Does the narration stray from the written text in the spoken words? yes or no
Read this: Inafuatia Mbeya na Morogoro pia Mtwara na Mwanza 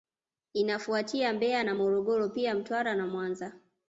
no